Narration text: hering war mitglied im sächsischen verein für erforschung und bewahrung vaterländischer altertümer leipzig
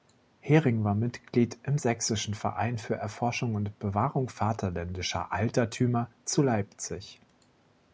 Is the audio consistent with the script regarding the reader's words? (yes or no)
no